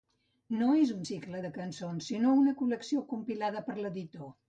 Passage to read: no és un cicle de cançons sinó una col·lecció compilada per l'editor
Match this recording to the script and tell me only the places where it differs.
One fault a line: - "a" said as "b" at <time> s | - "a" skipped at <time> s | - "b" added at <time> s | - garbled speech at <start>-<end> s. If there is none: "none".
none